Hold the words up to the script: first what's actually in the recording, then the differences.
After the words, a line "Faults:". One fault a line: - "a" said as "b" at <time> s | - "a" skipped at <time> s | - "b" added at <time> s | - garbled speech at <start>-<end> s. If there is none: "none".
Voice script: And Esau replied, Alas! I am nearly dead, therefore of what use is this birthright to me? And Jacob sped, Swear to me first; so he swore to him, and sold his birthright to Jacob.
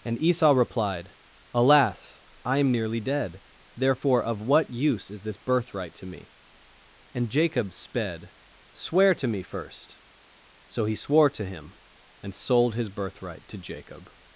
And Esau replied, Alas! I am nearly dead, therefore of what use is this birthright to me? And Jacob sped, Swear to me first; so he swore to him, and sold his birthright to Jacob.
Faults:
none